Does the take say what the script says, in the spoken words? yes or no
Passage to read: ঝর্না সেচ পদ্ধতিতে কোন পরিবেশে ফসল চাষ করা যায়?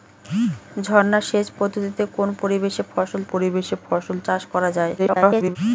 no